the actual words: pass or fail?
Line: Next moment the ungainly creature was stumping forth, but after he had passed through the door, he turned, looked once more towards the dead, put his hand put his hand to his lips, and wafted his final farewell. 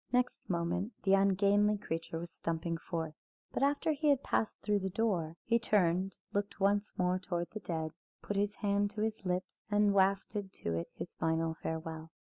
fail